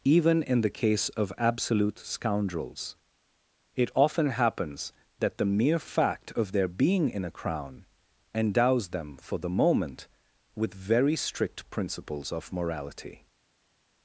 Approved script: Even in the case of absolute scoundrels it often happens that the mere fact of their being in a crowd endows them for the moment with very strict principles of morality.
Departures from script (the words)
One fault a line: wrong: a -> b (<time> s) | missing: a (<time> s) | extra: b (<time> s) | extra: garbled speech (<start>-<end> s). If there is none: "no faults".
wrong: crowd -> crown (7.3 s)